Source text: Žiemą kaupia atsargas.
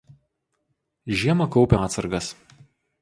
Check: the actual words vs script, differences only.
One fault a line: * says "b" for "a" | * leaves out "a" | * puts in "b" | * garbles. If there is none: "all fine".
all fine